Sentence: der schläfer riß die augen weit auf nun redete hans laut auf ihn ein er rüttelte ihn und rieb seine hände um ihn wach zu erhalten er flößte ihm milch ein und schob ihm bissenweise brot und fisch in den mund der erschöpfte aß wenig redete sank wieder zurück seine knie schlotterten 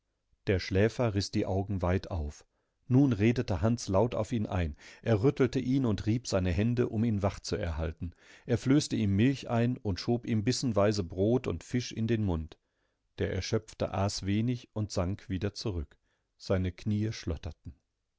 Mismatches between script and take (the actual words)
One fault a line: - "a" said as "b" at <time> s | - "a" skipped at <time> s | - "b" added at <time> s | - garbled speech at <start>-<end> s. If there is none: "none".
- "redete" said as "und" at 14.7 s